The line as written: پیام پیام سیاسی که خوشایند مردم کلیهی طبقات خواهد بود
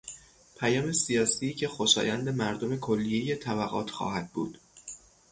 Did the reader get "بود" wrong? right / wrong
right